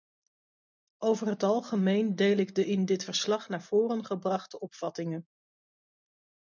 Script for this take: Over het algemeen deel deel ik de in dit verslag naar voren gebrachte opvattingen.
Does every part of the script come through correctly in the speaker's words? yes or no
no